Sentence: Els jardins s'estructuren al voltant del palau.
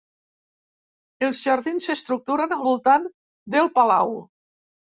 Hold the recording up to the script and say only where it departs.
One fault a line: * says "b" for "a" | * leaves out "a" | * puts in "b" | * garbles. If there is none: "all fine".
all fine